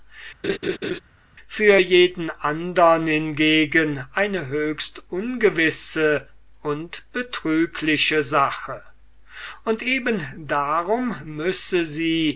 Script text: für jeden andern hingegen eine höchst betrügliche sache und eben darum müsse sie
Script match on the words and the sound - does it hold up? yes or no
no